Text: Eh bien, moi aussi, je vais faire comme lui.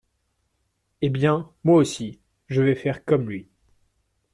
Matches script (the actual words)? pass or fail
pass